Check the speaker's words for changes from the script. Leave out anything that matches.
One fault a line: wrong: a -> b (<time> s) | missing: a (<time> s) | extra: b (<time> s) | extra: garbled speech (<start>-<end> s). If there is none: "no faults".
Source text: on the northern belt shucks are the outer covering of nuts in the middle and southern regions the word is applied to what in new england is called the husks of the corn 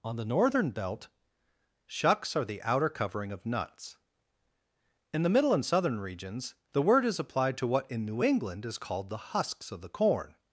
no faults